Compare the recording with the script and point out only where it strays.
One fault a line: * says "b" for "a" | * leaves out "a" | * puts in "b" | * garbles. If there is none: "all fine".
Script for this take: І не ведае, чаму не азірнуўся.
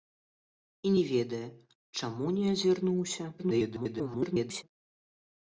* garbles